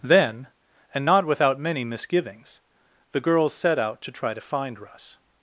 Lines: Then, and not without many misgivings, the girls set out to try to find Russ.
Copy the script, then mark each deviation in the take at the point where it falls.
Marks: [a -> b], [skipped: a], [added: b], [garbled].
Then, and not without many misgivings, the girls set out to try to find Russ.